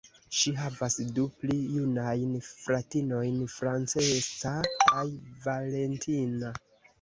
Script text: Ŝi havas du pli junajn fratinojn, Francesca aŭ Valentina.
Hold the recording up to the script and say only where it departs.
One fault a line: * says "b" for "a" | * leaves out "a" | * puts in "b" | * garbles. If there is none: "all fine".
* says "kaj" for "aŭ"